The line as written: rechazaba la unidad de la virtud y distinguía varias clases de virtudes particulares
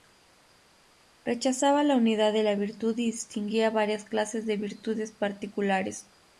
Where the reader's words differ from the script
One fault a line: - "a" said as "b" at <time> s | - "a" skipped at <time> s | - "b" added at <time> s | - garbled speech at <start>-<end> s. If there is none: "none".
none